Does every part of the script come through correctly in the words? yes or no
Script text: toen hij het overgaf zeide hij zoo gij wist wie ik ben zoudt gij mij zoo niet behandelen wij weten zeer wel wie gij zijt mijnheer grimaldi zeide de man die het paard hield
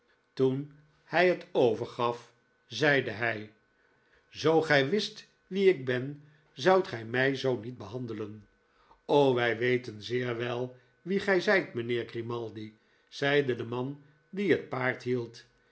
yes